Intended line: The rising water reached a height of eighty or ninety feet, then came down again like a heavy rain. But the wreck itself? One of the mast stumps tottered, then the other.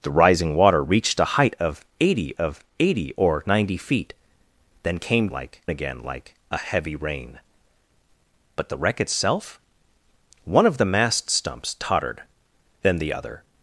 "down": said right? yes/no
no